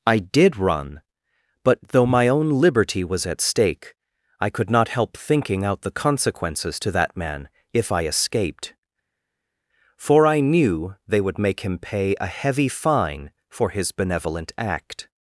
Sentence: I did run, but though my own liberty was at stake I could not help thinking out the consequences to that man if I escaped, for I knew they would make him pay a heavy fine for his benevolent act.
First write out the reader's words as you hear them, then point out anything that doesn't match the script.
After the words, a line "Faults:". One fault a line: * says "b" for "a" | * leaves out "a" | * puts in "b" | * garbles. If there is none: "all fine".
I did run, but though my own liberty was at stake I could not help thinking out the consequences to that man if I escaped, for I knew they would make him pay a heavy fine for his benevolent act.
Faults:
all fine